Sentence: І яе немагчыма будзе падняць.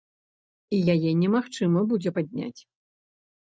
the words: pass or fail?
pass